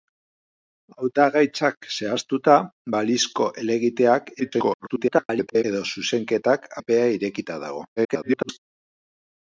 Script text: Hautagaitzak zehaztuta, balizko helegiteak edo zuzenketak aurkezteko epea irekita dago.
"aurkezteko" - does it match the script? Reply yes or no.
no